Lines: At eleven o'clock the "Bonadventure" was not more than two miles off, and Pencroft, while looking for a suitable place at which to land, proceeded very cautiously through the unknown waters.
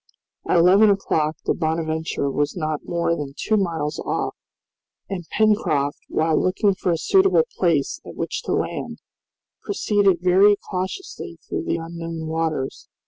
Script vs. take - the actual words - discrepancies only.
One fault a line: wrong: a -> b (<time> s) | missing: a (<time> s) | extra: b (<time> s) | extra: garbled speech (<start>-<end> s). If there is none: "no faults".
no faults